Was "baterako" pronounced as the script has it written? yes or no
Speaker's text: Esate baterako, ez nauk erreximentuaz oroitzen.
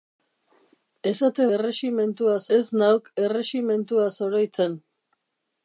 no